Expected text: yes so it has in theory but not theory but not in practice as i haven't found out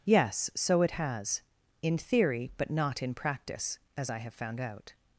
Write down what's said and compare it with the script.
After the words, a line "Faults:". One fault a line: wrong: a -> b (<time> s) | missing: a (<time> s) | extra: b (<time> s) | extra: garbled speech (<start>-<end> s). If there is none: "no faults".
yes so it has in theory but not in practice as i have found out
Faults:
missing: theory but not (3.0 s)
wrong: haven't -> have (4.2 s)